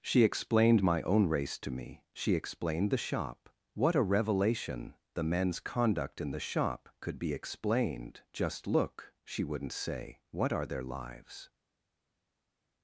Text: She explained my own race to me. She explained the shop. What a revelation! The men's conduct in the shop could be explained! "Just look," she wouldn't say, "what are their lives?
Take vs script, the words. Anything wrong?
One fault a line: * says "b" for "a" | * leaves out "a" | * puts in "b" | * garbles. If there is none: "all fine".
all fine